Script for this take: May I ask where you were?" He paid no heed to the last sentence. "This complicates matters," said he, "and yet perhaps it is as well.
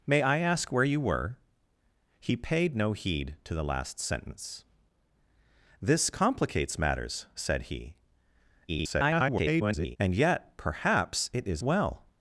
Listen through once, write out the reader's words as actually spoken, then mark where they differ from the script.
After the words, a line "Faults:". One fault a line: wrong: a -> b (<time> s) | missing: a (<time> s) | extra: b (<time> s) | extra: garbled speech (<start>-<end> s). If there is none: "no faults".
May I ask where you were?" He paid no heed to the last sentence. "This complicates matters," said he, [garbled] "and yet perhaps it is well.
Faults:
extra: garbled speech (8.7-10.0 s)
missing: as (11.6 s)